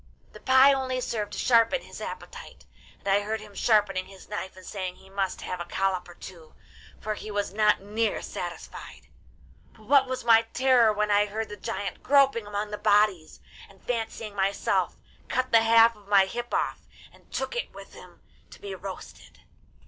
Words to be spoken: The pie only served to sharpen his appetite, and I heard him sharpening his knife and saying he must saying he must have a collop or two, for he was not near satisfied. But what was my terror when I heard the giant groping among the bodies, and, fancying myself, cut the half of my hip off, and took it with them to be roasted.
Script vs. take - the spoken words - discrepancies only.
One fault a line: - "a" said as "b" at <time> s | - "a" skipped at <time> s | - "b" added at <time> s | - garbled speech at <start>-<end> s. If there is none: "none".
- "saying he must" skipped at 5.4 s
- "them" said as "him" at 17.9 s